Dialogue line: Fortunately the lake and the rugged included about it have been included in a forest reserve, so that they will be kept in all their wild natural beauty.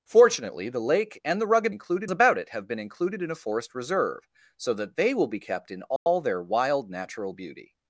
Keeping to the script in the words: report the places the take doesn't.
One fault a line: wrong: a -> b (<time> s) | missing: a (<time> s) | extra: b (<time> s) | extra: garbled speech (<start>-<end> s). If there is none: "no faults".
no faults